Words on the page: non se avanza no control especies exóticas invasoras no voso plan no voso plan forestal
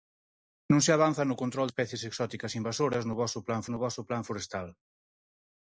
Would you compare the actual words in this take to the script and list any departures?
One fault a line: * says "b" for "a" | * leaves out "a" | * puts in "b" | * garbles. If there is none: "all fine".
all fine